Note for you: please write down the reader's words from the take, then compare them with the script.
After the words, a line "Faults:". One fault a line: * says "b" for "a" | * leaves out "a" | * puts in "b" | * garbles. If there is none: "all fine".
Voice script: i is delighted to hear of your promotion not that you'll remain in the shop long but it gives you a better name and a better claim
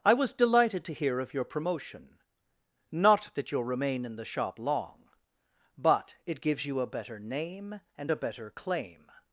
i was delighted to hear of your promotion not that you'll remain in the shop long but it gives you a better name and a better claim
Faults:
* says "was" for "is"